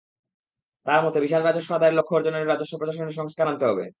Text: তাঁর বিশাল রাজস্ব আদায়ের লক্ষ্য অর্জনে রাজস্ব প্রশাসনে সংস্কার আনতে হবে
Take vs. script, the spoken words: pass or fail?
fail